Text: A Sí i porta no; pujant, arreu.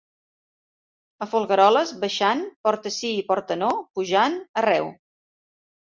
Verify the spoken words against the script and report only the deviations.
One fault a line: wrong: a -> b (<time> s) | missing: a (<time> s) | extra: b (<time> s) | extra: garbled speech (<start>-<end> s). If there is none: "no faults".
extra: Folgueroles baixant porta (1.3 s)